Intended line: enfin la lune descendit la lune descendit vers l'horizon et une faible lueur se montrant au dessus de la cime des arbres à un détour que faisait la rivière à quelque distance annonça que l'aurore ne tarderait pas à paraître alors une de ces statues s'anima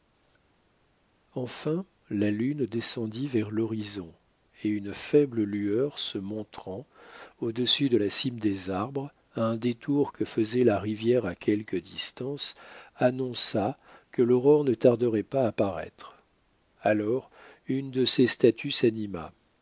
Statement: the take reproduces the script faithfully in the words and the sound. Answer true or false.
false